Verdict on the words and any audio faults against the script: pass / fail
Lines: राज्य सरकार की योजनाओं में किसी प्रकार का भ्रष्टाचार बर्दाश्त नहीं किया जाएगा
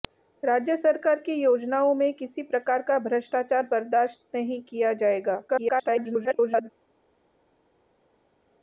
fail